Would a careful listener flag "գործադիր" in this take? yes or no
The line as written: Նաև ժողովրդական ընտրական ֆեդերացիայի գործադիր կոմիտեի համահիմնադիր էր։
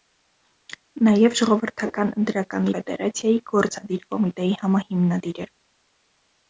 no